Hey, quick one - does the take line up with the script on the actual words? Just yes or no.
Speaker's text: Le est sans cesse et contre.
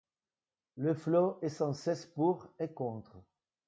no